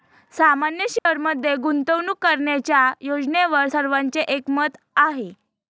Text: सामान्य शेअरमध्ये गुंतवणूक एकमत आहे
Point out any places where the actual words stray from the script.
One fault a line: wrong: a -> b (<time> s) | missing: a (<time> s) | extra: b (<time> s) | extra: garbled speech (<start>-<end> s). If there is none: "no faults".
extra: करण्याच्या योजनेवर सर्वांचे (2.2 s)